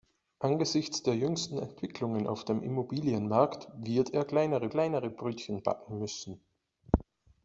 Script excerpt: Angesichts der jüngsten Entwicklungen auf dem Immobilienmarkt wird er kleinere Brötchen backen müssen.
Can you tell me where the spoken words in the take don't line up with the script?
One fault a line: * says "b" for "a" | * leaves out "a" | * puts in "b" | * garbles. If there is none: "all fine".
* puts in "kleinere"